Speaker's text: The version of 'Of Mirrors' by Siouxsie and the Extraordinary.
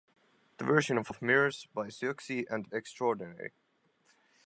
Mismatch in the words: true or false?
false